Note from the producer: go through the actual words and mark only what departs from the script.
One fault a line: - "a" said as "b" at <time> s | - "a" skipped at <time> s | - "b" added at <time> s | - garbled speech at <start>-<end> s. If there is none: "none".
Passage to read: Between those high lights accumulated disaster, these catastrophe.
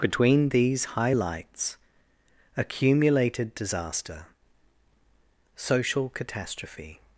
- "those" said as "these" at 0.5 s
- "these" said as "social" at 5.6 s